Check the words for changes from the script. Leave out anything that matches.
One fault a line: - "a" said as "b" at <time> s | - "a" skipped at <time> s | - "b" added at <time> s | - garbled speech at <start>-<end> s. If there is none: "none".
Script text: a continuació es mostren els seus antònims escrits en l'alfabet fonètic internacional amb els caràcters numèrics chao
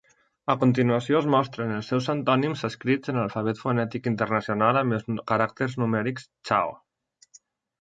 none